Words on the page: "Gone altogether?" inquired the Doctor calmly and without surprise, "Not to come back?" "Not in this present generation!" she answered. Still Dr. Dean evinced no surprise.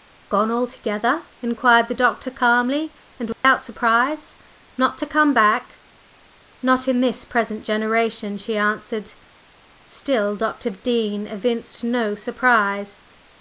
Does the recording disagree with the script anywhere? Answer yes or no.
no